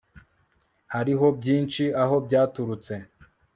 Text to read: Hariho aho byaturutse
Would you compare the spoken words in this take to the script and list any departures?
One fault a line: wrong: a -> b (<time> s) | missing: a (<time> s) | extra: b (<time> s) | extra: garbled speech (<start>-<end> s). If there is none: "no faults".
extra: byinshi (1.4 s)